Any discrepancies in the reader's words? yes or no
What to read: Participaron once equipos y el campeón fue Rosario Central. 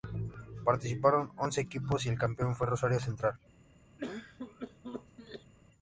no